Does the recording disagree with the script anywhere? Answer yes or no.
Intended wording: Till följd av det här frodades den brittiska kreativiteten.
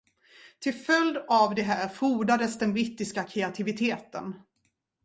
no